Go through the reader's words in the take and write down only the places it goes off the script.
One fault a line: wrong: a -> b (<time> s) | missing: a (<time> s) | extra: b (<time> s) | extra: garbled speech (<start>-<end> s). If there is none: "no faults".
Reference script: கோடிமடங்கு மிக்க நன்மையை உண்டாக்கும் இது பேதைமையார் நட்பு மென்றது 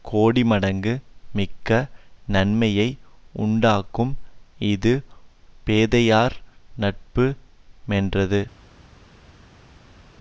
no faults